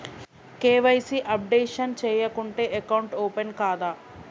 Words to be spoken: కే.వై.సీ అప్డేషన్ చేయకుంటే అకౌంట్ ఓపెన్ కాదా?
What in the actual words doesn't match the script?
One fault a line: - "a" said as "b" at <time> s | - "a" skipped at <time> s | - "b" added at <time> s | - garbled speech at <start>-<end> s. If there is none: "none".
none